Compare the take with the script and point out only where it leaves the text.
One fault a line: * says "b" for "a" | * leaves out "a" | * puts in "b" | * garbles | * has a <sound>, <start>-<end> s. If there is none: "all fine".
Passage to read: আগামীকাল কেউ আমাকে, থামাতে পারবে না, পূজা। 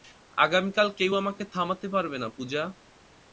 all fine